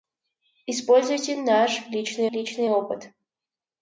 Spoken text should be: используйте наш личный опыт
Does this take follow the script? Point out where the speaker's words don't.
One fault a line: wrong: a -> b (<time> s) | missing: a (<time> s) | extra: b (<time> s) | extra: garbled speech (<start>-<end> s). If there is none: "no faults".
extra: личный (2.3 s)